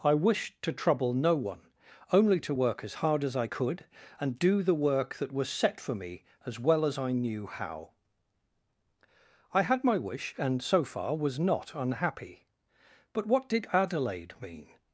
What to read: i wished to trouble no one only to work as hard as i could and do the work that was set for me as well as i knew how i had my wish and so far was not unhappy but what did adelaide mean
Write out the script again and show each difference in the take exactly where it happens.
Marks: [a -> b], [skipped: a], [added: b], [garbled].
i wished to trouble no one only to work as hard as i could and do the work that was set for me as well as i knew how i had my wish and so far was not unhappy but what did adelaide mean